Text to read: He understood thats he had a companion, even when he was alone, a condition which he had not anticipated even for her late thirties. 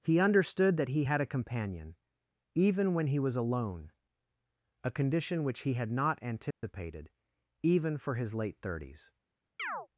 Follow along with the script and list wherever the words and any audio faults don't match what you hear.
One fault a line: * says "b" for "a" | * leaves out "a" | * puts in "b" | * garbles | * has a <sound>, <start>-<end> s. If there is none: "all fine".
* says "that" for "thats"
* has a dropout, 6.5-6.6 s
* says "his" for "her"
* has a chirp, 9.6-9.9 s